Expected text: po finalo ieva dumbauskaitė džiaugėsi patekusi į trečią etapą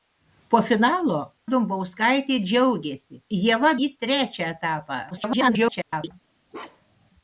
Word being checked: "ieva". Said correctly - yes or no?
no